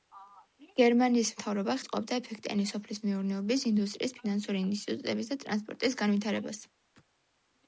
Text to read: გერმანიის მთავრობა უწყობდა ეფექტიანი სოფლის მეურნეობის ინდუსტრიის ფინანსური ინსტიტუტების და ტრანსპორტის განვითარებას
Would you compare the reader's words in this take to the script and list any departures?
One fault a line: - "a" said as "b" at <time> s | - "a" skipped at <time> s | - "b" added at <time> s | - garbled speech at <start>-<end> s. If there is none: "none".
none